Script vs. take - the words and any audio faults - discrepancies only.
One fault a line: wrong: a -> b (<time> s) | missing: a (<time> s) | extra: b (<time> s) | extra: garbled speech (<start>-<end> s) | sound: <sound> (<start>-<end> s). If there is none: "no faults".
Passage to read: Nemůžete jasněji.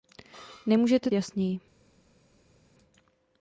no faults